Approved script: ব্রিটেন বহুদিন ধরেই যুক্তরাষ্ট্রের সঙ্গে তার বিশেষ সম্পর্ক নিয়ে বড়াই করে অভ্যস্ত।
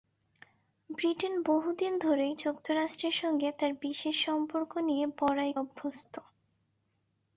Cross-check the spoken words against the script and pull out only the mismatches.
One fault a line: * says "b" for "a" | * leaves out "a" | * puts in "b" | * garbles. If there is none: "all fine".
* leaves out "করে"